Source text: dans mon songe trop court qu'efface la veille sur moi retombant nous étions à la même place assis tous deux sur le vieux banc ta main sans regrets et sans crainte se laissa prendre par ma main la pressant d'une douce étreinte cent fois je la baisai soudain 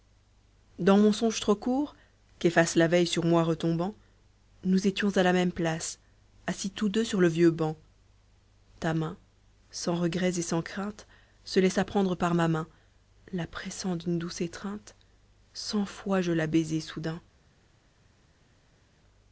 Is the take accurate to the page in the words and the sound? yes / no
yes